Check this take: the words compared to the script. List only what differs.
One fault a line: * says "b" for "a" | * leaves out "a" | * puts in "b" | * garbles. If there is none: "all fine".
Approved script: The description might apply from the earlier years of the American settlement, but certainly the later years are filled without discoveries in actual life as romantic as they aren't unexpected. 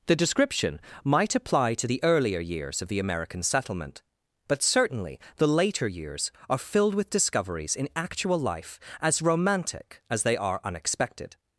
* says "to" for "from"
* says "with" for "without"
* says "are" for "aren't"